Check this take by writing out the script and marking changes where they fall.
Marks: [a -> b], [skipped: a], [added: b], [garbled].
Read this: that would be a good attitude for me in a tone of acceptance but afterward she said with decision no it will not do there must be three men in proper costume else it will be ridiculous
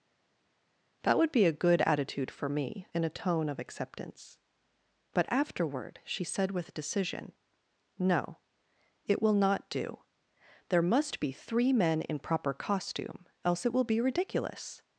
that would be a good attitude for me in a tone of acceptance but afterward she said with decision no it will not do there must be three men in proper costume else it will be ridiculous